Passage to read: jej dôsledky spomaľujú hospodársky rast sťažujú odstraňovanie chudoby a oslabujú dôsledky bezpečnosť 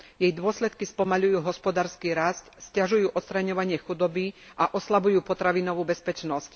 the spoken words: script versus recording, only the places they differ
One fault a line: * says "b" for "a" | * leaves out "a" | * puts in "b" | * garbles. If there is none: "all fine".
* says "potravinovú" for "dôsledky"